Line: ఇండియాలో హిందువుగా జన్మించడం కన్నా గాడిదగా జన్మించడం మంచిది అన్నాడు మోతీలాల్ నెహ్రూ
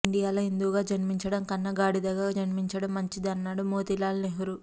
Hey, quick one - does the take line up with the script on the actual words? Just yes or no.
yes